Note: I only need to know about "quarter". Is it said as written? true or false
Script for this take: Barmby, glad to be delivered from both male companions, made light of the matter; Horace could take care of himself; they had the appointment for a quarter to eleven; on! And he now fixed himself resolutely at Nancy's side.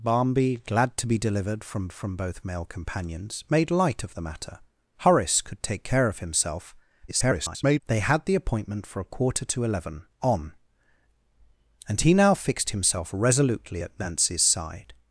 true